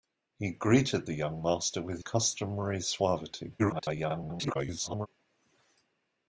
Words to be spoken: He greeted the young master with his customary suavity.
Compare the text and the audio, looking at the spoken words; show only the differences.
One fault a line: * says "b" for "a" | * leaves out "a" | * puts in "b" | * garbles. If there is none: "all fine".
* leaves out "his"
* garbles